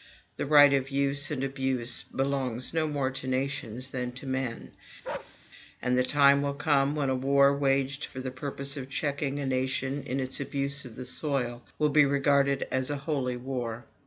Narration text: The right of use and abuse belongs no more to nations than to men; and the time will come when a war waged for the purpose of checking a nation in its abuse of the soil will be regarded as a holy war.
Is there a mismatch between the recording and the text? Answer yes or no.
no